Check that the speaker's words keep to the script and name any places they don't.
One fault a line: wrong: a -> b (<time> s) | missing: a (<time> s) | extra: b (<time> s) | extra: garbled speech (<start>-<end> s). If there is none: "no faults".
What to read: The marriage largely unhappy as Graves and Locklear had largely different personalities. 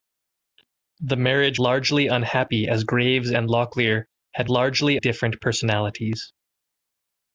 no faults